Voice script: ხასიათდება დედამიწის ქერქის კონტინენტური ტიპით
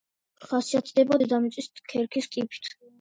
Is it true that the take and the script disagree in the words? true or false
true